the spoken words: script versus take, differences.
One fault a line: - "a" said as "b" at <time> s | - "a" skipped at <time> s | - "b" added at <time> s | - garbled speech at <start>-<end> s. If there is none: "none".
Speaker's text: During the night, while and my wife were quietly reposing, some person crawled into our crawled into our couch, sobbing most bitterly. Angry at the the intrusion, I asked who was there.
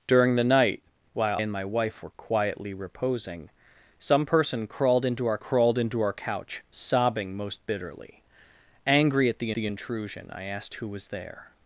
none